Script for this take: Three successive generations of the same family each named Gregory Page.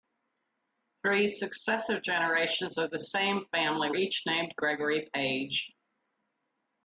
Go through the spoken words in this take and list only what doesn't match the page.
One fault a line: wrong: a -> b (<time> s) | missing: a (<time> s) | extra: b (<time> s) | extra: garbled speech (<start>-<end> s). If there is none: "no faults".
no faults